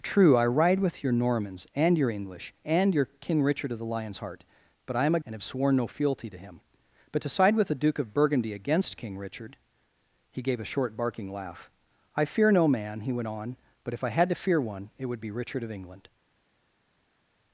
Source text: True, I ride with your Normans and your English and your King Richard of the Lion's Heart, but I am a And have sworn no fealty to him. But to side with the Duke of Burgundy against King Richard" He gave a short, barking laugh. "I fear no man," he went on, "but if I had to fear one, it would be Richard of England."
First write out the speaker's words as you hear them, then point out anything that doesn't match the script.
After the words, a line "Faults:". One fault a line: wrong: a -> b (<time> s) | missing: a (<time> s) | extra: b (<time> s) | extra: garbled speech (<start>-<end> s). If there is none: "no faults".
True, I ride with your Normans and your English and your King Richard of the Lion's Heart, but I am a And have sworn no fealty to him. But to side with the Duke of Burgundy against King Richard" He gave a short, barking laugh. "I fear no man," he went on, "but if I had to fear one, it would be Richard of England."
Faults:
no faults